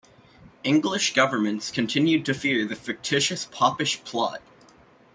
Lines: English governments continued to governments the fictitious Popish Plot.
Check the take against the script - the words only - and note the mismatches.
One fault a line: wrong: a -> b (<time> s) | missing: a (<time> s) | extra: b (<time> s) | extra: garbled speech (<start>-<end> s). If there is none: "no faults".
wrong: governments -> fear (2.3 s)